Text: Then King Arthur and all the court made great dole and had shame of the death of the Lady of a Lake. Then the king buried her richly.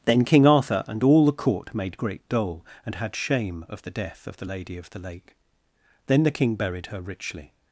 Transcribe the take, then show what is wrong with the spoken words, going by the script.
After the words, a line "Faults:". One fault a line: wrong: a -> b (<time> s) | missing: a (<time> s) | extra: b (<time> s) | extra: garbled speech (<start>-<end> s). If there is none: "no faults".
Then King Arthur and all the court made great dole and had shame of the death of the Lady of the Lake. Then the king buried her richly.
Faults:
wrong: a -> the (4.9 s)